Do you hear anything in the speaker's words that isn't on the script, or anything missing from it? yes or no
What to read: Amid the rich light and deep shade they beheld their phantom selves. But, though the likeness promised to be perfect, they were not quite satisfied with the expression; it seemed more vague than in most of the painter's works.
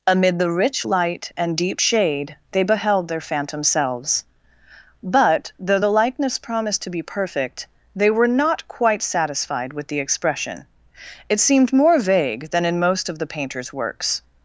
no